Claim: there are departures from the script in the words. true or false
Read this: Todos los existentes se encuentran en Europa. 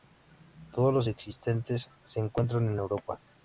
false